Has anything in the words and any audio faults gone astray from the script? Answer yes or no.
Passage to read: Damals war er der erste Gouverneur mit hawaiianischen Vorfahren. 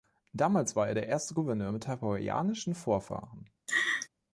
yes